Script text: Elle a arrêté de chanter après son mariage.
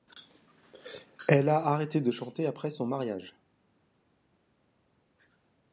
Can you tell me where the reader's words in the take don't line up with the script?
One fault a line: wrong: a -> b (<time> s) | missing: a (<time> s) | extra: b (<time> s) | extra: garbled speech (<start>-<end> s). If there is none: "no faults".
no faults